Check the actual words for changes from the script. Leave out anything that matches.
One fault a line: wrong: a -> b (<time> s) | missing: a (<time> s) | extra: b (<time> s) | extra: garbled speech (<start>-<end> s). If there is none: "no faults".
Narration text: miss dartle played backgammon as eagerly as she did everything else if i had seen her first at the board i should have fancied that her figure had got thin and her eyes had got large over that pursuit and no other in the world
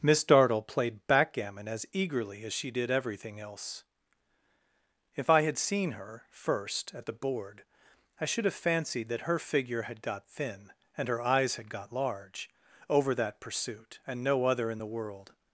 no faults